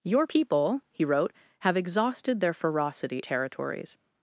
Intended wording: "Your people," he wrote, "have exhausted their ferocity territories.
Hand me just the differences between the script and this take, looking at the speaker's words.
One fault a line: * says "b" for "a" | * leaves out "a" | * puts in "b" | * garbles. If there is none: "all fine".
all fine